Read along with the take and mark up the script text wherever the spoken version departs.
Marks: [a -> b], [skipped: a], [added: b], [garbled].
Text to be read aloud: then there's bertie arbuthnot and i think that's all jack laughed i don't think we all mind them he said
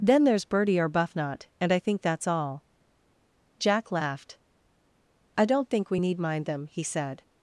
then there's bertie arbuthnot and i think that's all jack laughed i don't think we [all -> need] mind them he said